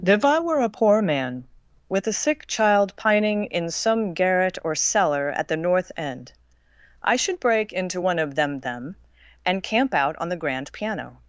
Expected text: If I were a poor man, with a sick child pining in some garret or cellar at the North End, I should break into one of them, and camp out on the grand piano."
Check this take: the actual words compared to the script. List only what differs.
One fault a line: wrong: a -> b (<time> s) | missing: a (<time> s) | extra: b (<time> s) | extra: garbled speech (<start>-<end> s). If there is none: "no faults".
extra: them (8.6 s)